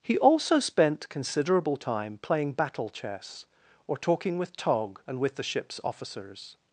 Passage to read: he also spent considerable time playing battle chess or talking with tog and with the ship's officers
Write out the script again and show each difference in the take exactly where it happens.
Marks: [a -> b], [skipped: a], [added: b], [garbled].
he also spent considerable time playing battle chess or talking with tog and with the ship's officers